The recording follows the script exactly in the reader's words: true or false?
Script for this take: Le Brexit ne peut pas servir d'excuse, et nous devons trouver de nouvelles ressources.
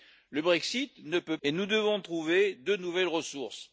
false